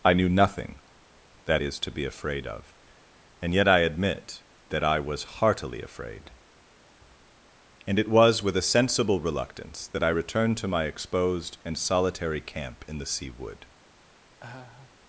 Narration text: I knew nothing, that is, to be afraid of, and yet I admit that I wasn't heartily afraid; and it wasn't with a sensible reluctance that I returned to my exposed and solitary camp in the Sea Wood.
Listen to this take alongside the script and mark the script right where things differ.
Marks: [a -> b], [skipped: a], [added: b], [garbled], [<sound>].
I knew nothing, that is, to be afraid of, and yet I admit that I [wasn't -> was] heartily afraid; and it [wasn't -> was] with a sensible reluctance that I returned to my exposed and solitary camp in the Sea Wood. [laugh]